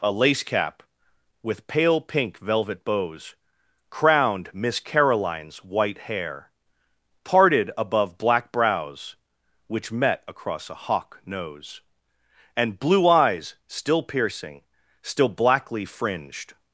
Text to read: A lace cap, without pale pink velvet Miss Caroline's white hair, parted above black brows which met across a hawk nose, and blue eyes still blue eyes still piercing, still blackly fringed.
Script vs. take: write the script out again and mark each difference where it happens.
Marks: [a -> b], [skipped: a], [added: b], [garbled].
A lace cap, [without -> with] pale pink velvet [added: bows crowned] Miss Caroline's white hair, parted above black brows which met across a hawk nose, and blue eyes still [skipped: blue eyes still] piercing, still blackly fringed.